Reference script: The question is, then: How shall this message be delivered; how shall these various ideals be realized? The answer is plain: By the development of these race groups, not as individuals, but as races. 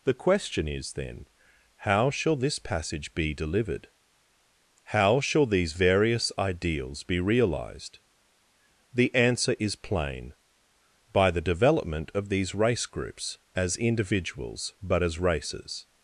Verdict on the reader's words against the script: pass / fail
fail